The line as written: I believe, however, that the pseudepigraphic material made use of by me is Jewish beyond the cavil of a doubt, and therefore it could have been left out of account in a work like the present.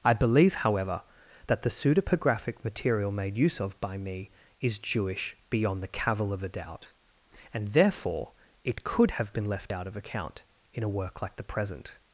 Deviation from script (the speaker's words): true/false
false